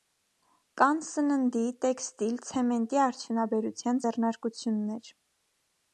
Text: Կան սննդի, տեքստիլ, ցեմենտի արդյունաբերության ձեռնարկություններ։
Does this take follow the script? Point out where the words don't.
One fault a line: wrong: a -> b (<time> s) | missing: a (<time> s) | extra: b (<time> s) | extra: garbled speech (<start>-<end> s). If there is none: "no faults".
no faults